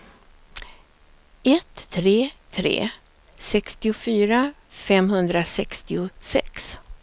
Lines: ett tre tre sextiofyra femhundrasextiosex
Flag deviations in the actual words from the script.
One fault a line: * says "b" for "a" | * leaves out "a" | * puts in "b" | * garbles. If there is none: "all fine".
all fine